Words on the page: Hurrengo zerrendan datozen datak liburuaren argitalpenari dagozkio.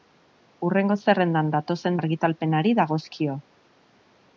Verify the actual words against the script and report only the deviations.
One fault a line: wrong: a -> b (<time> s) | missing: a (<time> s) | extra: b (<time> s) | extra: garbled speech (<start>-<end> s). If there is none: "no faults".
missing: datak liburuaren (2.0 s)